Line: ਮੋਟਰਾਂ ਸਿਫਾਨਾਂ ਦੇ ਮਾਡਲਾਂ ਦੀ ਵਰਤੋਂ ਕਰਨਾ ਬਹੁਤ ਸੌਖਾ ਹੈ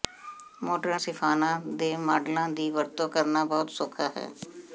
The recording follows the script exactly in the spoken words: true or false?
true